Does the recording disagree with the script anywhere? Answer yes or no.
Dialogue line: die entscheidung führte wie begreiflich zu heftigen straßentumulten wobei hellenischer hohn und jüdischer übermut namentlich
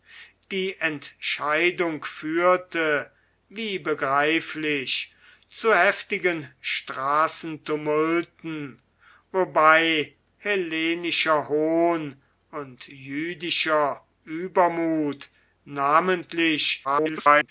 yes